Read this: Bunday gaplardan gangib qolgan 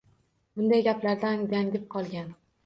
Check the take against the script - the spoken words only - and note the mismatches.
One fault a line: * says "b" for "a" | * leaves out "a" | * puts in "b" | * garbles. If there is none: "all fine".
all fine